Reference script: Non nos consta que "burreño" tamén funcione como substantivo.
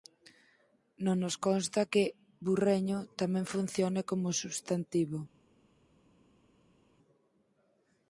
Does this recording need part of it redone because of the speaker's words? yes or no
no